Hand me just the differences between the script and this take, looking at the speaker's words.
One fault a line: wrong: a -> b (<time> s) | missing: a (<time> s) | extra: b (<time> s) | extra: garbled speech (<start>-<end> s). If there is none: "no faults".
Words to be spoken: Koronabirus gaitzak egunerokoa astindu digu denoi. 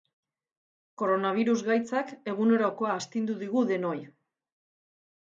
no faults